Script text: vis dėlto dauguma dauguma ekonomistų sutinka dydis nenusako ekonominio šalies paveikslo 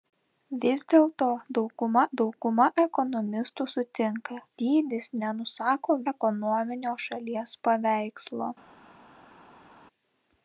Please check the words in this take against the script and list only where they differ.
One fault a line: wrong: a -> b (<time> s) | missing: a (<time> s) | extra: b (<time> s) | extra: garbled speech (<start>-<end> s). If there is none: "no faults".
no faults